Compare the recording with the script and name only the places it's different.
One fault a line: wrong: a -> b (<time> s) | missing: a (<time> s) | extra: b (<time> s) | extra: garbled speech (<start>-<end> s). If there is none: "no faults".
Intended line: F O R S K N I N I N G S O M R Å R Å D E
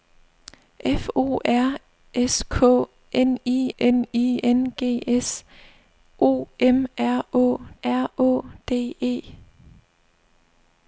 no faults